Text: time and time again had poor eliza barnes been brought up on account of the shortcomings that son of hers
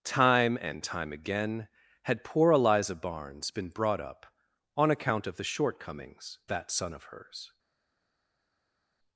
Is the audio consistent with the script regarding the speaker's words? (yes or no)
yes